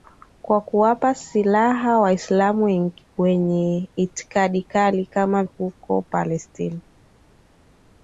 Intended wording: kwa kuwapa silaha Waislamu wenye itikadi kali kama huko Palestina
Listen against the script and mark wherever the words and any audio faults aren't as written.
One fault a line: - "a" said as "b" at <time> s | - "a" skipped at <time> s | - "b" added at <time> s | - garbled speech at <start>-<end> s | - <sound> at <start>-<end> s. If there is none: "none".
none